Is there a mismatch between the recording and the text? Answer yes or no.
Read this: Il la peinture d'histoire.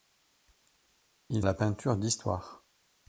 no